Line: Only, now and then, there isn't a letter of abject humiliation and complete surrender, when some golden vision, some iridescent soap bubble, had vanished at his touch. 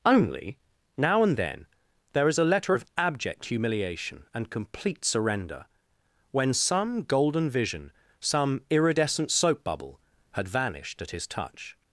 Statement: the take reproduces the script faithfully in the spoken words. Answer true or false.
false